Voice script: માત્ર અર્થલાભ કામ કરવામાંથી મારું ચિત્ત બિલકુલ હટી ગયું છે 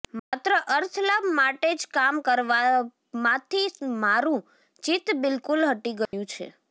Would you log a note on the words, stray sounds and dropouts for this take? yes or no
yes